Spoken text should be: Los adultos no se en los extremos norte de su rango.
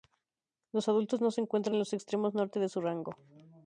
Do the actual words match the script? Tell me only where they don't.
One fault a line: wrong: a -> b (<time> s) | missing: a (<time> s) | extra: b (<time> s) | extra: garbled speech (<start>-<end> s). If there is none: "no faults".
extra: encuentran (1.4 s)